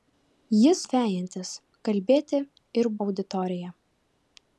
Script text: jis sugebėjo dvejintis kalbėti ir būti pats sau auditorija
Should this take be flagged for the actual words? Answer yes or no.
yes